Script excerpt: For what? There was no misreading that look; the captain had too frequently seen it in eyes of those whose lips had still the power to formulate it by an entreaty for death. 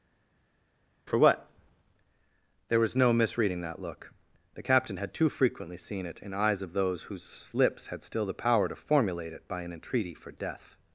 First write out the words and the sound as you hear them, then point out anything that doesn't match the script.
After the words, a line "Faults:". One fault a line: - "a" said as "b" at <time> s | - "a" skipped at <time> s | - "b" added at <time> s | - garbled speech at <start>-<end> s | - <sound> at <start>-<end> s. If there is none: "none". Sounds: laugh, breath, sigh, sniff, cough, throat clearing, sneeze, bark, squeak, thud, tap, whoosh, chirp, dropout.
For what? There was no misreading that look; the captain had too frequently seen it in eyes of those whose lips had still the power to formulate it by an entreaty for death.
Faults:
none